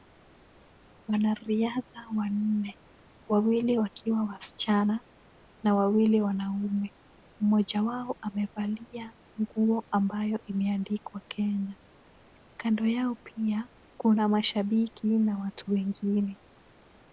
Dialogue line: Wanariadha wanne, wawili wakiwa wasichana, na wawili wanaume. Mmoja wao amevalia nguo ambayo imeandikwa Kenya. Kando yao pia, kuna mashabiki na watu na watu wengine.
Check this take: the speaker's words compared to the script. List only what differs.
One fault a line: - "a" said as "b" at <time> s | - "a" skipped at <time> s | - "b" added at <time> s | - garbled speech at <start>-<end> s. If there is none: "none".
- "na watu" skipped at 15.7 s